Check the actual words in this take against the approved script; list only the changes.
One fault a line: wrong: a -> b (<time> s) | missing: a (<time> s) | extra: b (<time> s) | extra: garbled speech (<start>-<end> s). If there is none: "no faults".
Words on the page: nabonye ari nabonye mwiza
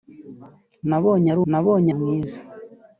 no faults